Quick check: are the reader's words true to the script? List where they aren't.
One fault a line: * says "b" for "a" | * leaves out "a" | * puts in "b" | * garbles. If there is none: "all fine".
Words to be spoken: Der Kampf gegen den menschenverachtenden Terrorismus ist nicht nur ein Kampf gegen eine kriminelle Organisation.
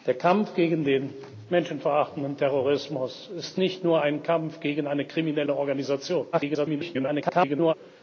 * garbles